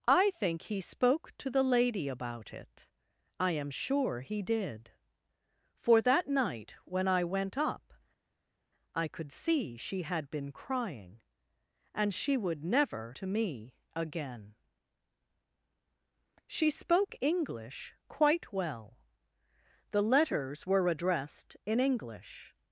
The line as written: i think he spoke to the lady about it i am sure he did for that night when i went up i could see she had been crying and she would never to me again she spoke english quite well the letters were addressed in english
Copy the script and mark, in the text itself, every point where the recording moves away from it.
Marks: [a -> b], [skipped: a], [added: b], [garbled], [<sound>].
i think he spoke to the lady about it i am sure he did for that night when i went up i could see she had been crying and she would never to me again she spoke english quite well the letters were addressed in english